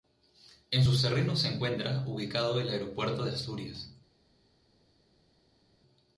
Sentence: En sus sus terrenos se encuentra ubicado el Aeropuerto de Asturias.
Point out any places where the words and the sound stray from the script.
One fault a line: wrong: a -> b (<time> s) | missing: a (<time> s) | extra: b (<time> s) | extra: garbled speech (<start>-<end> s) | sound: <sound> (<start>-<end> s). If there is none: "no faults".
missing: sus (1.0 s)